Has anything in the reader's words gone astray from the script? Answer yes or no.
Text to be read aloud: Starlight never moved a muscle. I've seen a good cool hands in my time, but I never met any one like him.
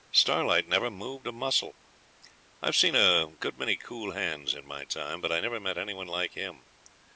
yes